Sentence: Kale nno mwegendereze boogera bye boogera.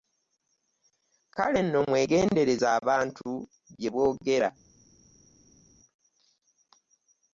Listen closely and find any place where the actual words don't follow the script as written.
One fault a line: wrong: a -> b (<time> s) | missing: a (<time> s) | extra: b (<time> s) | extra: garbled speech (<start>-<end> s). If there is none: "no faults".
wrong: boogera -> abantu (2.8 s)